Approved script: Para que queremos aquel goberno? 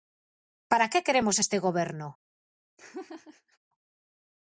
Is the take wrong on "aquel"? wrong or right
wrong